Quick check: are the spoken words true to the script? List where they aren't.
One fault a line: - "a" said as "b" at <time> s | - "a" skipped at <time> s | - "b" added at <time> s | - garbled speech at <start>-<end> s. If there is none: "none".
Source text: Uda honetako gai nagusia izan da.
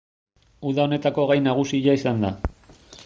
none